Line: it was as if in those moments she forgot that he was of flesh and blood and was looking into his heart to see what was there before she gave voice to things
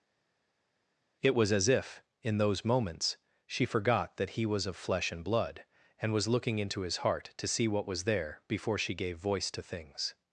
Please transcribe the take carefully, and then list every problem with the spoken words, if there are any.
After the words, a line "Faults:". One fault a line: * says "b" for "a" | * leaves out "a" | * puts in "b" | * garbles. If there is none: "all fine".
it was as if in those moments she forgot that he was of flesh and blood and was looking into his heart to see what was there before she gave voice to things
Faults:
all fine